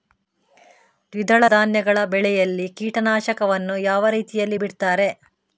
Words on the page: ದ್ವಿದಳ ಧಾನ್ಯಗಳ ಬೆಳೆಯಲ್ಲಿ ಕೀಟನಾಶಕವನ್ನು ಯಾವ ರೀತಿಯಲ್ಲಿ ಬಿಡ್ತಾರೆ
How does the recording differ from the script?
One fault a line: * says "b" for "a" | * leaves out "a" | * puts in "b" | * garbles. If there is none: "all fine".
all fine